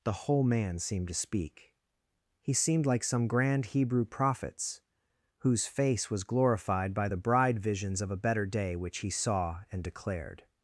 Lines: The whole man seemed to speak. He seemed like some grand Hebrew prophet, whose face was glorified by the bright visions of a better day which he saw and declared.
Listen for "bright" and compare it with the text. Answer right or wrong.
wrong